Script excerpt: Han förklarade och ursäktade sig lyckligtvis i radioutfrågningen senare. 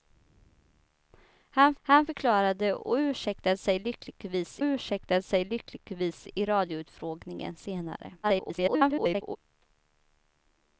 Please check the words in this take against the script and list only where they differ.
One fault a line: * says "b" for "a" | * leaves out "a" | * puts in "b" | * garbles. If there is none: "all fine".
* puts in "han"
* puts in "ursäktade sig lyckligtvis"
* garbles